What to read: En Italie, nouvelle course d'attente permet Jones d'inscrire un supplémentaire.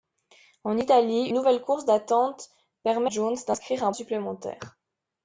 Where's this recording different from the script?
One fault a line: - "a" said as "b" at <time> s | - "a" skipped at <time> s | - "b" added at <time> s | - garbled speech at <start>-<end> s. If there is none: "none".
none